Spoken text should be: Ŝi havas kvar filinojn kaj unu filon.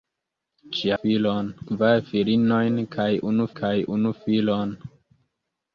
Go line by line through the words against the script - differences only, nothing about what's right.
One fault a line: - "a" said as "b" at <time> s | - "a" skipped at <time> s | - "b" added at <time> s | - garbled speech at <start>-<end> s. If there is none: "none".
- "havas" said as "filon" at 1.0 s
- "kaj unu" added at 3.6 s